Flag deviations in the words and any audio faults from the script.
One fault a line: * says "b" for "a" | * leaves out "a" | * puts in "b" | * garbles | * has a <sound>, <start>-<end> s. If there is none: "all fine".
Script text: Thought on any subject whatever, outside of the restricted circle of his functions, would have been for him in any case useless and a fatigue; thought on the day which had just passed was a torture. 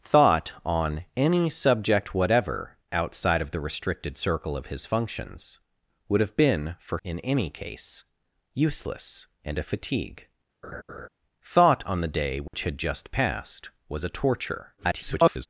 * leaves out "him"
* has a laugh, 10.6-11.1 s
* has a dropout, 12.5-12.5 s
* garbles